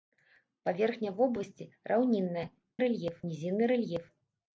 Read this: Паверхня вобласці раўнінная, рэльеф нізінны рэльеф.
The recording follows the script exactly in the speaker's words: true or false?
true